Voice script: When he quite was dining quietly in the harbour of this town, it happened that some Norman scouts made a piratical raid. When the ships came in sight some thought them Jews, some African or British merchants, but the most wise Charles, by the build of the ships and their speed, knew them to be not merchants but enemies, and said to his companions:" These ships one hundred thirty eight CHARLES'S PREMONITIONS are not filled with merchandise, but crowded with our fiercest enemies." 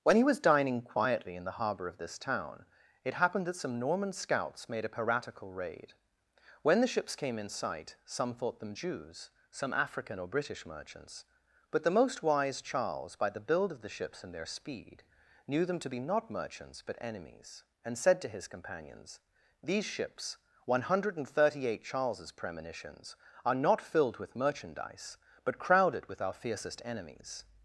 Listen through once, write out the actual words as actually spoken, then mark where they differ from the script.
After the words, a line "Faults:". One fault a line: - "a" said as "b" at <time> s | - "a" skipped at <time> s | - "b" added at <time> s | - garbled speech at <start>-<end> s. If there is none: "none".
When he was dining quietly in the harbour of this town, it happened that some Norman scouts made a piratical raid. When the ships came in sight some thought them Jews, some African or British merchants, but the most wise Charles, by the build of the ships and their speed, knew them to be not merchants but enemies, and said to his companions:" These ships one hundred thirty eight CHARLES'S PREMONITIONS are not filled with merchandise, but crowded with our fiercest enemies."
Faults:
- "quite" skipped at 0.2 s